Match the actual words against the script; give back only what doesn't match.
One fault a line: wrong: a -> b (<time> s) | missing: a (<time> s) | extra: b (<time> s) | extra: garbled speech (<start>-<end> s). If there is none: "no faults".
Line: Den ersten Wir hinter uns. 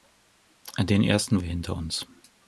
no faults